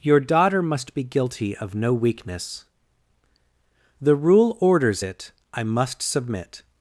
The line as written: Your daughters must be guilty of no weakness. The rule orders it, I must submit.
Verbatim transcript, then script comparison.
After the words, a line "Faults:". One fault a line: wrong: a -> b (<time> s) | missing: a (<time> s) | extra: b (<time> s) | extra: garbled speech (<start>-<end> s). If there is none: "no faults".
Your daughter must be guilty of no weakness. The rule orders it, I must submit.
Faults:
wrong: daughters -> daughter (0.2 s)